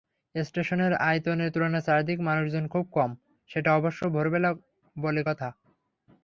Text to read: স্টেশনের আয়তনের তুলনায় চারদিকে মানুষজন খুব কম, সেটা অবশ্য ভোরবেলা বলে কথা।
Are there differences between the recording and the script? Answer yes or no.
no